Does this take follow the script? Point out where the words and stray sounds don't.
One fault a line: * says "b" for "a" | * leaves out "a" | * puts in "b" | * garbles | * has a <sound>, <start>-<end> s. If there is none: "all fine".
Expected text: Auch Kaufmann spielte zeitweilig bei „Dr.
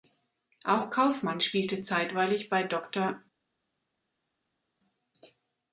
all fine